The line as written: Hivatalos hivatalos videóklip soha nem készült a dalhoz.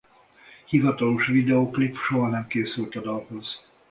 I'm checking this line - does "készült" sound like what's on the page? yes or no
yes